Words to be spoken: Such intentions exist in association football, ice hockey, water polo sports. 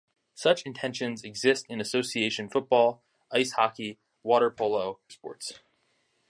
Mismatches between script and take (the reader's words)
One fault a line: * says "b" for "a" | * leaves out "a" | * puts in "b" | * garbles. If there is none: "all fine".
all fine